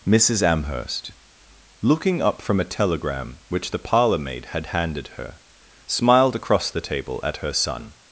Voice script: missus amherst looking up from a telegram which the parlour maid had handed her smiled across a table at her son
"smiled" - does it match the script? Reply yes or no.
yes